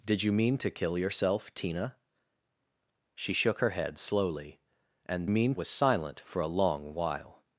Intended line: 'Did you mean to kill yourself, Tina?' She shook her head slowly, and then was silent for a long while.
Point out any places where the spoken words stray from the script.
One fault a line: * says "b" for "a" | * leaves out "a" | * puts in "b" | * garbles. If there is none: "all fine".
* says "mean" for "then"